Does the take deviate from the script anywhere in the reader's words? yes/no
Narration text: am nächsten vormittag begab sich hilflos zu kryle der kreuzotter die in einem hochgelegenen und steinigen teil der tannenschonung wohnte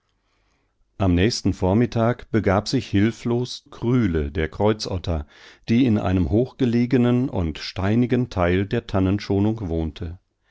yes